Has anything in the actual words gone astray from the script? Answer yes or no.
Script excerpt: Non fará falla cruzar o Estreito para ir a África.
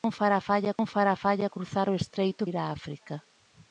yes